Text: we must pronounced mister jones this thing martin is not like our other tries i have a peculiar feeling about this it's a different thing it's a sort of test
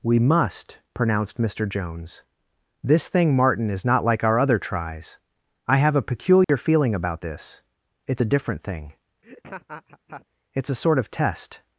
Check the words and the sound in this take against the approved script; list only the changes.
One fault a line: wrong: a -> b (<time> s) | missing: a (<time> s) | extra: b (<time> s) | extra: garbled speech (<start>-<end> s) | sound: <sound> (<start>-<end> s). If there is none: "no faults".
sound: dropout (6.4-6.5 s)
sound: laugh (9.2-10.3 s)